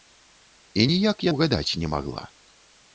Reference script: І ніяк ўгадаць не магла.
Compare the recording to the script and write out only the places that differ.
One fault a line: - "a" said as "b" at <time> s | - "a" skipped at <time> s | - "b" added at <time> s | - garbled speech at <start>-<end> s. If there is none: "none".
none